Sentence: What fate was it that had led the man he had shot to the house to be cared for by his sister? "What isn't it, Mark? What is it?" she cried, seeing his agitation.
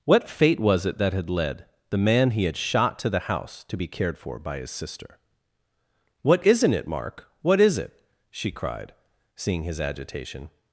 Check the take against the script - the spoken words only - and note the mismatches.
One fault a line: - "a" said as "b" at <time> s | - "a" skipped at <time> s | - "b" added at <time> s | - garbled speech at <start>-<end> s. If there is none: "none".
none